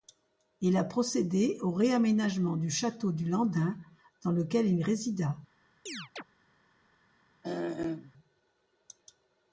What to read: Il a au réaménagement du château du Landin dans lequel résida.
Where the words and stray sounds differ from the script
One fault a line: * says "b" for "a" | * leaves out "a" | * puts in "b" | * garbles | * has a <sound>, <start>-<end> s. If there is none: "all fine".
* puts in "procédé"
* puts in "il"
* has a chirp, 5.9-6.2 s
* has a throat clearing, 7.4-8.1 s